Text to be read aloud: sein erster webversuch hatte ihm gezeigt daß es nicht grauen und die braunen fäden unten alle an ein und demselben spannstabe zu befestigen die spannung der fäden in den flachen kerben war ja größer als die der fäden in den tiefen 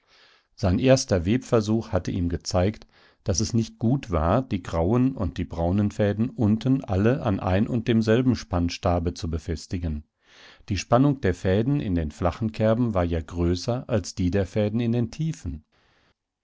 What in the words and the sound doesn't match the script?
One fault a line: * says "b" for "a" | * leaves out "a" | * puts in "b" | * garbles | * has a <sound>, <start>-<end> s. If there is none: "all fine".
* puts in "gut war die"